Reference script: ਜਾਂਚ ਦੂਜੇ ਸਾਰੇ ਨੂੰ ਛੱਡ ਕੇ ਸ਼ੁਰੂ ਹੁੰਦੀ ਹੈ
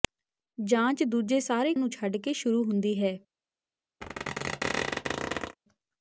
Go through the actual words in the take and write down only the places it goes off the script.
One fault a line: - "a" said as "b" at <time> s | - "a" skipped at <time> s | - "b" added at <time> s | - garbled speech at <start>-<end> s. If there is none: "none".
none